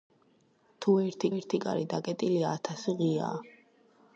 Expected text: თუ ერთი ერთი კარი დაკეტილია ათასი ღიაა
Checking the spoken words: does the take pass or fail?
pass